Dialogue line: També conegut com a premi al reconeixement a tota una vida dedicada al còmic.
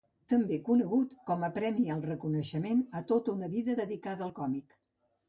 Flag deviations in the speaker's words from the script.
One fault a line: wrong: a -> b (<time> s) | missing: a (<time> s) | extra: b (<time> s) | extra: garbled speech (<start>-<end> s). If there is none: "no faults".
no faults